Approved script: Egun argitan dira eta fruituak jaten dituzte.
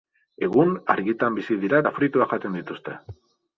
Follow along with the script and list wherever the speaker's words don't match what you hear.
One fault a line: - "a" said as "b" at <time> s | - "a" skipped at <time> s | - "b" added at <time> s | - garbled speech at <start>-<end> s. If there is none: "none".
- "bizi" added at 1.4 s